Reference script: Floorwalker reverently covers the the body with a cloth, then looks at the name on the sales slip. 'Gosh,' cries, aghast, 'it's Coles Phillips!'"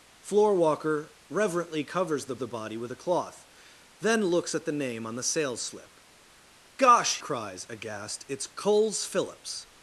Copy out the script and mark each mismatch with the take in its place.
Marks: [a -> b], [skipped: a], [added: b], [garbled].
Floorwalker reverently covers the the body with a cloth, then looks at the name on the sales slip. 'Gosh,' cries, aghast, 'it's Coles Phillips!'"